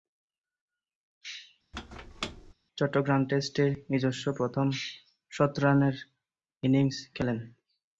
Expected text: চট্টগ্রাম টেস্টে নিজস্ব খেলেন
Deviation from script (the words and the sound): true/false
true